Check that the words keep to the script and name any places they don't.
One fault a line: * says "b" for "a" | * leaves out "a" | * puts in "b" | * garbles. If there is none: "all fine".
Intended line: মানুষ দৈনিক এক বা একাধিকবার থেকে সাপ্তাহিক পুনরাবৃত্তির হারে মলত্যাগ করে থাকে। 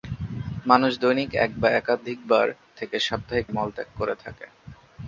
* leaves out "পুনরাবৃত্তির হারে"